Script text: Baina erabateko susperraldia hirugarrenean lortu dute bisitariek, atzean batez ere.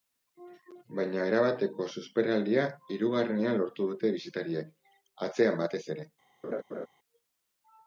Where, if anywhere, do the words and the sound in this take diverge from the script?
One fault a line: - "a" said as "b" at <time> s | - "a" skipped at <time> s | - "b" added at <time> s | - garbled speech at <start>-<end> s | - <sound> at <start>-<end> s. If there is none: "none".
- laugh at 6.4-6.9 s